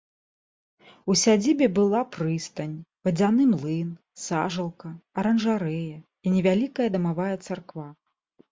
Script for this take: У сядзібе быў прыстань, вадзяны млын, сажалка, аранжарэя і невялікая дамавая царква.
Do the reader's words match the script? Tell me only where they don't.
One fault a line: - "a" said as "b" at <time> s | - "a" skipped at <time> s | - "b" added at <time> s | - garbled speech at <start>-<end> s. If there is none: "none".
- "быў" said as "была" at 1.8 s